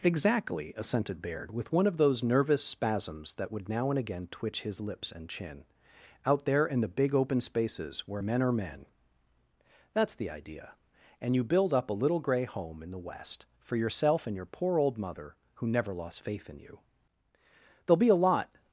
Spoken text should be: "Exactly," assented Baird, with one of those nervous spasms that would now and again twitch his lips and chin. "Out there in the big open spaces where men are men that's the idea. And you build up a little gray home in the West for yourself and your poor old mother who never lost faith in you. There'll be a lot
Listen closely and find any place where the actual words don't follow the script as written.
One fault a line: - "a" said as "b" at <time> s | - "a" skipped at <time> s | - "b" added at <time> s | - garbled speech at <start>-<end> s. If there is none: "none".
none